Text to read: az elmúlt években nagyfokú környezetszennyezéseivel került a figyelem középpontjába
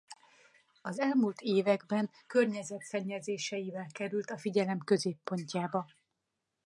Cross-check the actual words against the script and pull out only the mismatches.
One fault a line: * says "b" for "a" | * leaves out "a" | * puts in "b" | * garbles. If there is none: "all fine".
* leaves out "nagyfokú"